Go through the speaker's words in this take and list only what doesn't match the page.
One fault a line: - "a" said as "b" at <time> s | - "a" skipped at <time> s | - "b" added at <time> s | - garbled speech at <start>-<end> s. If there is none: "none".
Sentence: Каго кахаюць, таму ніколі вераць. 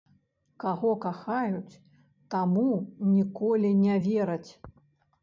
- "не" added at 3.8 s